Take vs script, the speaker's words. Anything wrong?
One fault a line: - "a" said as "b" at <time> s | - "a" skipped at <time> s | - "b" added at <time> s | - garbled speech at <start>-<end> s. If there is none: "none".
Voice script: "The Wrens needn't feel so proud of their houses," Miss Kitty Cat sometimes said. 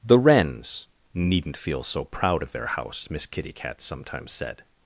- "houses" said as "house" at 2.7 s